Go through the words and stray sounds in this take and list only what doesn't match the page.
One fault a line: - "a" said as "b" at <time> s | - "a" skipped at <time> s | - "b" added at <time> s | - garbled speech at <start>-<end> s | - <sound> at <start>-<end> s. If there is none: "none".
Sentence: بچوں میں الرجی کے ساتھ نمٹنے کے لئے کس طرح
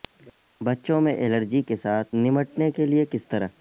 none